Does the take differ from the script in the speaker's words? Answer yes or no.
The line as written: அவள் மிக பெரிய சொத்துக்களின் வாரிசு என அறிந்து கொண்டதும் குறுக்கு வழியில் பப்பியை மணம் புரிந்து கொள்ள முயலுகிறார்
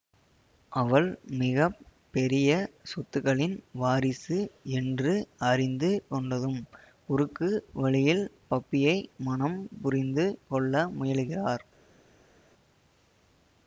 yes